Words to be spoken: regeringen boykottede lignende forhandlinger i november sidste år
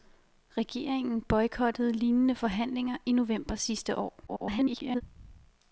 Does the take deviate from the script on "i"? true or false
false